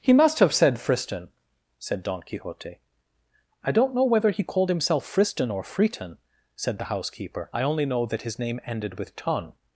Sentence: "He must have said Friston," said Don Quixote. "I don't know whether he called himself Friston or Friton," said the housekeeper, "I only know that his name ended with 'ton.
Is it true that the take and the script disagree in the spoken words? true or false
false